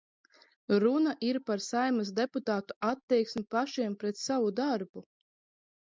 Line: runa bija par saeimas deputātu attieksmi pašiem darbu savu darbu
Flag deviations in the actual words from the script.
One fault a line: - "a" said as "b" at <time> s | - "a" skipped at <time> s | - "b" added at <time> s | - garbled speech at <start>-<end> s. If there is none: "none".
- "bija" said as "ir" at 1.3 s
- "darbu" said as "pret" at 4.1 s